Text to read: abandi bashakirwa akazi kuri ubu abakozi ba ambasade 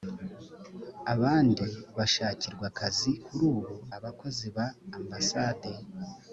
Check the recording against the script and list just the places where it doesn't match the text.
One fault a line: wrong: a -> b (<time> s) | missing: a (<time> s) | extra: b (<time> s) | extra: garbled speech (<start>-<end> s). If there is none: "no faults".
no faults